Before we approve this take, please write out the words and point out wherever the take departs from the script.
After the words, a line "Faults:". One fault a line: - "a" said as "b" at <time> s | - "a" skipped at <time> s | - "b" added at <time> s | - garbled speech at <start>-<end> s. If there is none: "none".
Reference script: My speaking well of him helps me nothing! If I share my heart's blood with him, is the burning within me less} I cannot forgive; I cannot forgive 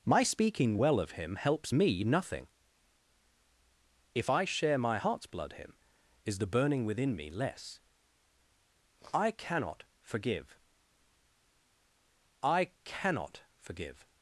My speaking well of him helps me nothing! If I share my heart's blood him, is the burning within me less} I cannot forgive; I cannot forgive
Faults:
- "with" skipped at 5.5 s